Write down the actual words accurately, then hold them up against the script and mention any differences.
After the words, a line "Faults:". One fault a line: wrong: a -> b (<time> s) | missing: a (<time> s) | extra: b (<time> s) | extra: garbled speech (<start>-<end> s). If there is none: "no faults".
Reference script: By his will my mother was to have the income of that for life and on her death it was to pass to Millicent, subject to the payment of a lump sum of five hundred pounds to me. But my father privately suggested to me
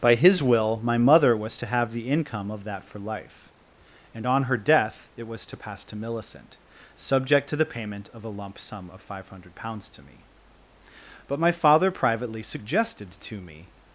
By his will my mother was to have the income of that for life and on her death it was to pass to Millicent, subject to the payment of a lump sum of five hundred pounds to me. But my father privately suggested to me
Faults:
no faults